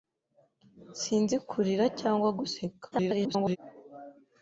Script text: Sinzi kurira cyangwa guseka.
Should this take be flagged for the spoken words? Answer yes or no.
yes